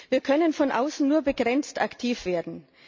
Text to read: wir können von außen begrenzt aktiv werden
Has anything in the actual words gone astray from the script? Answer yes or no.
yes